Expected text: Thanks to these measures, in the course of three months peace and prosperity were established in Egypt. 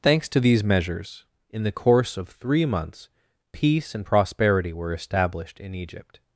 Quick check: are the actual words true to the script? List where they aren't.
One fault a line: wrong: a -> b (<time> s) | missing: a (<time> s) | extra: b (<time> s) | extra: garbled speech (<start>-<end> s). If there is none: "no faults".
no faults